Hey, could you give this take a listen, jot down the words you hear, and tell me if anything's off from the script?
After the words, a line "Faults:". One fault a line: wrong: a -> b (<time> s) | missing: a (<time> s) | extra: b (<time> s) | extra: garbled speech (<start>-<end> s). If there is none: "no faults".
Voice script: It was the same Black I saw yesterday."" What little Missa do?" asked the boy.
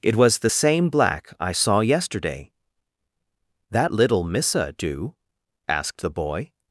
It was the same Black I saw yesterday."" That little Missa do?" asked the boy.
Faults:
wrong: What -> That (3.7 s)